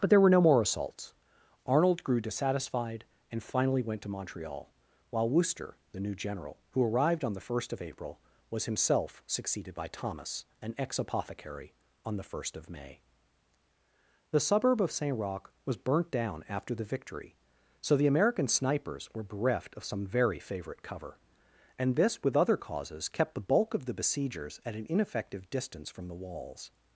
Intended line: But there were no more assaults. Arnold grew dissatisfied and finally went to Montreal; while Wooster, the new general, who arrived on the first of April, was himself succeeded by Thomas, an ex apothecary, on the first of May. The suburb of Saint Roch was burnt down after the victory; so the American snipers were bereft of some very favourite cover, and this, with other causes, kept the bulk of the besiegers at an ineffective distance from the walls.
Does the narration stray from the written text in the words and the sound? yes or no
no